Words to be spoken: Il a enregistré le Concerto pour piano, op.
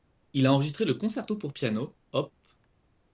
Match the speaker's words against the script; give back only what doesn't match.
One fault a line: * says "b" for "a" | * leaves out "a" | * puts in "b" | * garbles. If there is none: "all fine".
all fine